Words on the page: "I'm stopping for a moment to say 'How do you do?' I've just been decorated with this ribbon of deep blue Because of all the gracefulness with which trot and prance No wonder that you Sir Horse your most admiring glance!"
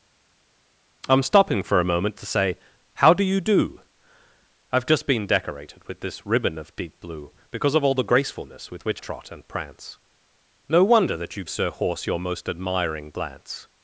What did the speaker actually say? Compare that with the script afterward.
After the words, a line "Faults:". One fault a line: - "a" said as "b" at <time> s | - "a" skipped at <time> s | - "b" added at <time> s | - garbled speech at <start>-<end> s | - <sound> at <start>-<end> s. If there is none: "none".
"I'm stopping for a moment to say 'How do you do?' I've just been decorated with this ribbon of deep blue Because of all the gracefulness with which trot and prance No wonder that you Sir Horse your most admiring glance!"
Faults:
none